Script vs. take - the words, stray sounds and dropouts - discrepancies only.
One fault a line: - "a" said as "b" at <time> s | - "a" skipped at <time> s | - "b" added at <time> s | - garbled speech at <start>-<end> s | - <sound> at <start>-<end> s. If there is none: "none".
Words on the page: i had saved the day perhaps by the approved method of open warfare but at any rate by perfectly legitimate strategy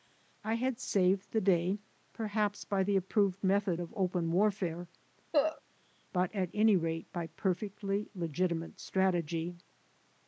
- cough at 5.3-5.6 s